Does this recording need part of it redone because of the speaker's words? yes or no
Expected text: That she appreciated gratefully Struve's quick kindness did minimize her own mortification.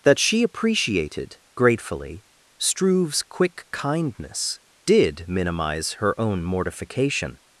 no